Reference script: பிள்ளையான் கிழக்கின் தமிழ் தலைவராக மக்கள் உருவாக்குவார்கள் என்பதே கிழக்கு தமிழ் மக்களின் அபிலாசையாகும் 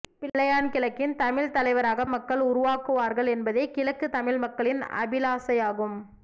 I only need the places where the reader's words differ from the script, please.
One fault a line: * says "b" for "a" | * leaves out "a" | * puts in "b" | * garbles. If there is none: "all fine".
all fine